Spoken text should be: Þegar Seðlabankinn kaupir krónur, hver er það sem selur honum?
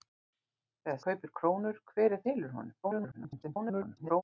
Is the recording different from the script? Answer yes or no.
yes